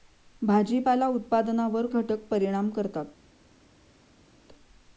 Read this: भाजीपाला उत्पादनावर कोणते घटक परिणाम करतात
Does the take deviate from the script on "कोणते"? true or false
true